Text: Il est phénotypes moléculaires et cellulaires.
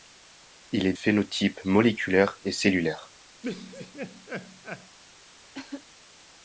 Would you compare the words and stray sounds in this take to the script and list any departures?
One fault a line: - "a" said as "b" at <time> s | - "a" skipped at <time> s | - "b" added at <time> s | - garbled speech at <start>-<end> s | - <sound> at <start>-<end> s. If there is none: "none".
- laugh at 3.4-5.0 s
- cough at 5.5-5.9 s